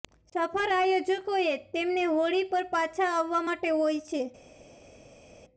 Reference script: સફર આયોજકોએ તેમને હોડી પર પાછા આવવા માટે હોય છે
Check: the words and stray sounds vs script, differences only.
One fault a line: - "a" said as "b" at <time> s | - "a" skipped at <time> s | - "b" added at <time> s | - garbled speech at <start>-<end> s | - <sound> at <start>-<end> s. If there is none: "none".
none